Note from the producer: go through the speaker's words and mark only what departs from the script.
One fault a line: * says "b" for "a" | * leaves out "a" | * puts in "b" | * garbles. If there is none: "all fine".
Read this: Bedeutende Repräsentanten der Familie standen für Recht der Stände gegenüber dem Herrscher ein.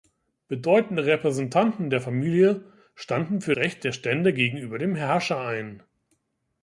all fine